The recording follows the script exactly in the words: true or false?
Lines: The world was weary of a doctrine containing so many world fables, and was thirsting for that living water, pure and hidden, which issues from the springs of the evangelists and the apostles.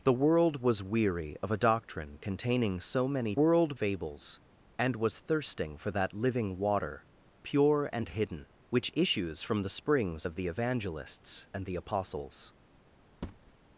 true